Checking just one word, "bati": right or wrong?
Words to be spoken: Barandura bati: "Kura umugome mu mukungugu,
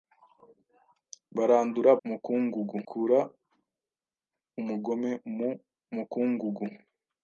wrong